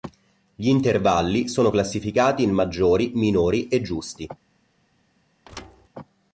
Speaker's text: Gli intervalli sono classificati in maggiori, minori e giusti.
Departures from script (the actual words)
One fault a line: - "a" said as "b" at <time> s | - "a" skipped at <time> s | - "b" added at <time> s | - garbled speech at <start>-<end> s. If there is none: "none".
none